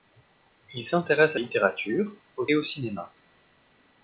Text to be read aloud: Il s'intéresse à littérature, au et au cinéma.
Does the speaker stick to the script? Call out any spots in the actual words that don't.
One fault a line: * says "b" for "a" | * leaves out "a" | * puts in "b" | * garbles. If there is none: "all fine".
all fine